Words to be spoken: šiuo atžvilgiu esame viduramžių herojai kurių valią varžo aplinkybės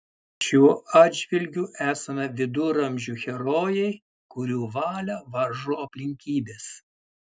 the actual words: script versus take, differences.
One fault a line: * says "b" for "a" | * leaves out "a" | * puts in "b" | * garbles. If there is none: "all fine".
all fine